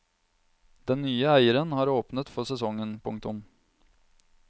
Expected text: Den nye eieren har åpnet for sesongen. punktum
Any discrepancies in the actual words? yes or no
no